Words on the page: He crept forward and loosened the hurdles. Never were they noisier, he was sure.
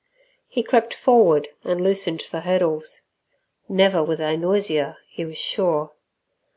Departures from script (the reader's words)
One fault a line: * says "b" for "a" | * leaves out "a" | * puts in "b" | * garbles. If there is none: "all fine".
all fine